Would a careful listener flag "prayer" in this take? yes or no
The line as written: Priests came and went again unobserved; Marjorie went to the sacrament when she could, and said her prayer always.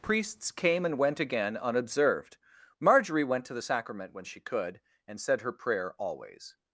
no